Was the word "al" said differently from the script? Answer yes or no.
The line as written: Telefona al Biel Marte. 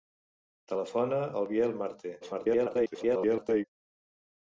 no